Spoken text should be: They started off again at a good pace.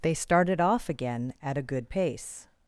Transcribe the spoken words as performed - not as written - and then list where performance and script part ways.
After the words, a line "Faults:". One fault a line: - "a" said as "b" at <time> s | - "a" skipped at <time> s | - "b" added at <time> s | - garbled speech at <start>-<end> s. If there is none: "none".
They started off again at a good pace.
Faults:
none